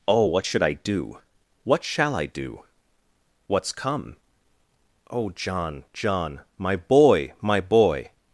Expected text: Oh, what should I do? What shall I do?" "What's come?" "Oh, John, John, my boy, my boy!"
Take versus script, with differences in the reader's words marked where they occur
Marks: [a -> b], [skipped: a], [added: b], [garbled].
Oh, what should I do? What shall I do?" "What's come?" "Oh, John, John, my boy, my boy!"